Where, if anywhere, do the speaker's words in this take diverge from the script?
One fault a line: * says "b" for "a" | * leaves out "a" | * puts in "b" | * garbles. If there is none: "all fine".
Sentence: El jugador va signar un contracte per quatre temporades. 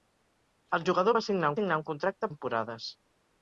* puts in "signar"
* leaves out "per quatre"